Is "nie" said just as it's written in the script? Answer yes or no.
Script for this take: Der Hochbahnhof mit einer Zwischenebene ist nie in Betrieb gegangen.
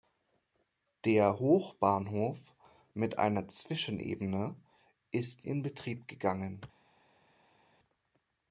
no